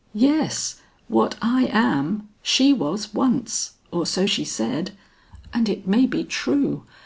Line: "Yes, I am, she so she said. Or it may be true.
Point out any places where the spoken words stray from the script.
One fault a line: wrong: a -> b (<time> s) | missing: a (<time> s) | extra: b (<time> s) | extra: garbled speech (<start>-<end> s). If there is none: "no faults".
extra: what (1.1 s)
extra: was once or (2.7 s)
wrong: Or -> And (5.5 s)